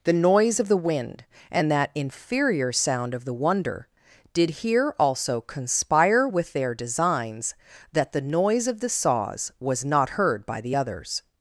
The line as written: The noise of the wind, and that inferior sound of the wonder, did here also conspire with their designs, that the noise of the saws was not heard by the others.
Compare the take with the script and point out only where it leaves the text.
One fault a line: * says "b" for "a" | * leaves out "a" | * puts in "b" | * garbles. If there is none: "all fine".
all fine